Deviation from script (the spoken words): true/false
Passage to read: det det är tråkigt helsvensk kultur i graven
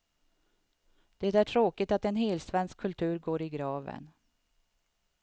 true